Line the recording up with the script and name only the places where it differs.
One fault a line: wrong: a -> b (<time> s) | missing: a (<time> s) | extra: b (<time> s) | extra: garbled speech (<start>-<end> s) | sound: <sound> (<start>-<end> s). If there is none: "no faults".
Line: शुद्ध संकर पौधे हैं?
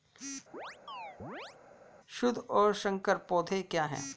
sound: chirp (0.5-1.6 s)
extra: और (2.4 s)
extra: क्या (3.6 s)